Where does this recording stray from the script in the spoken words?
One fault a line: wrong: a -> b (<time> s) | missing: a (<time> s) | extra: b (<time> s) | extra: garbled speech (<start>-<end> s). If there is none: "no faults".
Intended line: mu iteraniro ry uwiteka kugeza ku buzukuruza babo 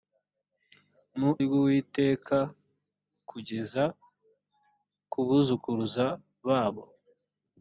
missing: iteraniro (1.3 s)